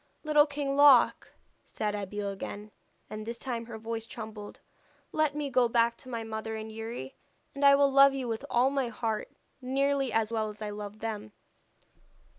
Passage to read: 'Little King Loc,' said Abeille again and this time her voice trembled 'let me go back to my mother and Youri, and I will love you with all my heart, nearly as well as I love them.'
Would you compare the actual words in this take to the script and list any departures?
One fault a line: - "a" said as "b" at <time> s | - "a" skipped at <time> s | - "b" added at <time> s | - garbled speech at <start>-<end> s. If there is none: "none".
none